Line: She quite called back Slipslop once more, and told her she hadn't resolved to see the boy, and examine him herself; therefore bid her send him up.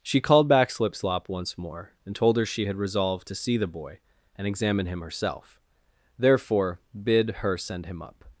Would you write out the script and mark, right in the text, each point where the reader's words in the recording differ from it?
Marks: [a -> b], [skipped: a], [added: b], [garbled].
She [skipped: quite] called back Slipslop once more, and told her she [hadn't -> had] resolved to see the boy, and examine him herself; therefore bid her send him up.